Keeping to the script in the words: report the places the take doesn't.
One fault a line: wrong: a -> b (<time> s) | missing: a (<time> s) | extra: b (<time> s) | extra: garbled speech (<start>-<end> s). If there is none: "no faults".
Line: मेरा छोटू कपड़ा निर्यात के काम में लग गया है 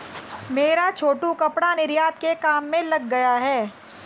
no faults